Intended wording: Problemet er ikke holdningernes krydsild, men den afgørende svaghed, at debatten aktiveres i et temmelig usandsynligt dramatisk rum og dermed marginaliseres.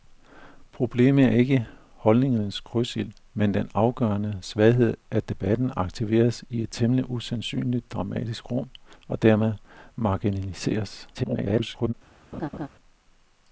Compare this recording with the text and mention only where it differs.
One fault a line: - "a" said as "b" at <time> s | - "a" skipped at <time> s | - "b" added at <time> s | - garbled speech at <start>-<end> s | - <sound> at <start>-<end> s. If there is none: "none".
- garbled speech at 11.1-11.9 s
- laugh at 12.3-12.7 s